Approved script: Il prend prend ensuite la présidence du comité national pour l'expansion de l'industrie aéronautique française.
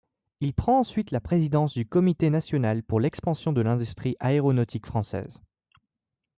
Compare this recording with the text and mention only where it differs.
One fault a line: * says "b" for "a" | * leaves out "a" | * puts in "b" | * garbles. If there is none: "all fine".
* leaves out "prend"